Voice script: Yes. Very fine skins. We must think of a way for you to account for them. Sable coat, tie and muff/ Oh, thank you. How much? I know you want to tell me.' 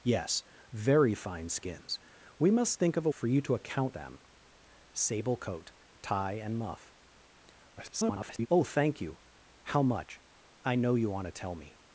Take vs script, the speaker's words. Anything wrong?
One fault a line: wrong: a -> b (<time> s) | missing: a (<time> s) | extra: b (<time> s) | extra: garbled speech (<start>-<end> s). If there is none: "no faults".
missing: way (3.1 s)
missing: for (4.0 s)
extra: garbled speech (7.8-8.5 s)